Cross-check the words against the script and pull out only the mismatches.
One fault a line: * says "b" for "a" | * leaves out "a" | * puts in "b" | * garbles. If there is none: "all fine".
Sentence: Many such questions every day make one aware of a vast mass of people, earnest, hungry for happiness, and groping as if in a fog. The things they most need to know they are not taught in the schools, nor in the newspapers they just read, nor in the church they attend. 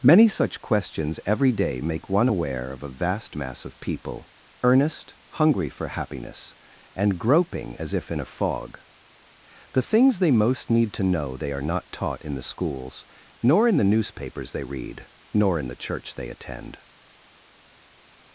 * leaves out "just"